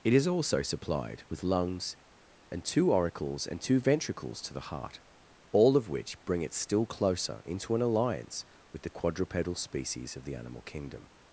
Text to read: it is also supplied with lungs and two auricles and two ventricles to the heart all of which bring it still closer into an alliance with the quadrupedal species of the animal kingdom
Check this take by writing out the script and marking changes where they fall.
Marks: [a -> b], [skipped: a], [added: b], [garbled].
it is also supplied with lungs and two auricles and two ventricles to the heart all of which bring it still closer into an alliance with the quadrupedal species of the animal kingdom